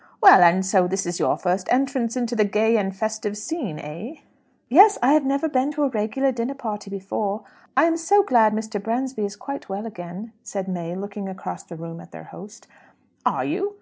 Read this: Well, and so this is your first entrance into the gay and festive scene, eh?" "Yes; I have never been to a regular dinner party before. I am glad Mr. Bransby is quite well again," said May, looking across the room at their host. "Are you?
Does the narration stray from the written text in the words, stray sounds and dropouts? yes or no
yes